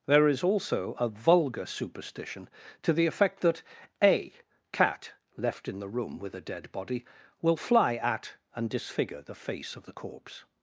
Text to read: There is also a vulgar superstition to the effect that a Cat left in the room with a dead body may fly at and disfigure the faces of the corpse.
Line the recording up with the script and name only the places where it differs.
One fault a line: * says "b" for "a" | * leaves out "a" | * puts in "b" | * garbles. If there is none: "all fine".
* says "will" for "may"
* says "face" for "faces"